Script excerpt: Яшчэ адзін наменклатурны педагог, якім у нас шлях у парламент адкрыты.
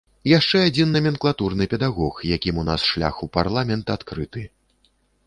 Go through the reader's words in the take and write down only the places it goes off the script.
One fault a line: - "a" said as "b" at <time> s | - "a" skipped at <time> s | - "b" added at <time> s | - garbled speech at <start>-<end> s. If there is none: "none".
none